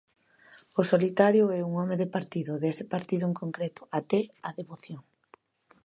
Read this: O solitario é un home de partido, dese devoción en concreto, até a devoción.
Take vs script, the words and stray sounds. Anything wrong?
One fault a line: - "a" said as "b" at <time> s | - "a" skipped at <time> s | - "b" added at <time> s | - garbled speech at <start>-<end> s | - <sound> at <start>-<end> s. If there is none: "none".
- "devoción" said as "partido" at 2.9 s